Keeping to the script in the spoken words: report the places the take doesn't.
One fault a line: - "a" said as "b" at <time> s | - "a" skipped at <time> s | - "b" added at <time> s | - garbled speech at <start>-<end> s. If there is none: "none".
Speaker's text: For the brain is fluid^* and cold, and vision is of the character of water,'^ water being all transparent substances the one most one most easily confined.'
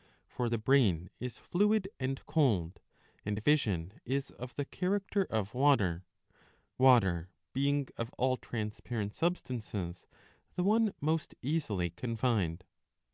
- "of" added at 7.9 s
- "one most" skipped at 11.3 s